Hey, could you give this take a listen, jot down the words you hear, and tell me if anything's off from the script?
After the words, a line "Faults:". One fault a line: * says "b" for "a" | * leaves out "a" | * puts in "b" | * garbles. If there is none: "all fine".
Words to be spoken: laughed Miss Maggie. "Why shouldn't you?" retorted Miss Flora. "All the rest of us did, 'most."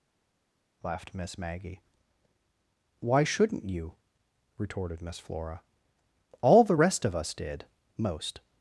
laughed Miss Maggie. "Why shouldn't you?" retorted Miss Flora. "All the rest of us did, 'most."
Faults:
all fine